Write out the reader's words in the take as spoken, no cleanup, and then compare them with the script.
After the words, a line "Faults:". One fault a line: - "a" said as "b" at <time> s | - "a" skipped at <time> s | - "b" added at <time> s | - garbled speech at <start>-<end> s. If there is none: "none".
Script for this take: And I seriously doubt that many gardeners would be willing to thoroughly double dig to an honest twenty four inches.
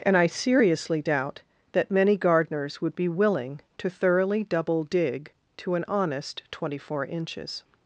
And I seriously doubt that many gardeners would be willing to thoroughly double dig to an honest twenty four inches.
Faults:
none